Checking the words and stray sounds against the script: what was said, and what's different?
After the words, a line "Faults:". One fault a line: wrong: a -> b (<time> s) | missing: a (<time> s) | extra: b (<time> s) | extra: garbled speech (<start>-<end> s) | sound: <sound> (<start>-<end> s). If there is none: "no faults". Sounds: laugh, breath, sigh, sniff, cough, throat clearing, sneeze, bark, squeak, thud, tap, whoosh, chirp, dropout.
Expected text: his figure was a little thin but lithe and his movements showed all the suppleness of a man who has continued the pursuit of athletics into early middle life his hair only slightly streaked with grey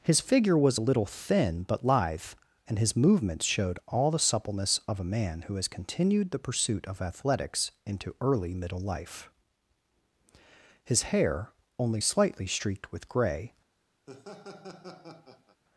his figure was a little thin but lithe and his movements showed all the suppleness of a man who has continued the pursuit of athletics into early middle life his hair only slightly streaked with grey
Faults:
sound: laugh (14.1-15.6 s)